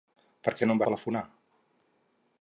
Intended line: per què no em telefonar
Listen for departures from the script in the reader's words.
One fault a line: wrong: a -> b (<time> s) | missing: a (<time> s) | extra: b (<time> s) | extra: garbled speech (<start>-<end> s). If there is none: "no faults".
no faults